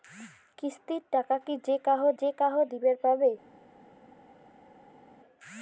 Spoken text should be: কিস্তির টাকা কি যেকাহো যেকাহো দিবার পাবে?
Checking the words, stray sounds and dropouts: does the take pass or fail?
pass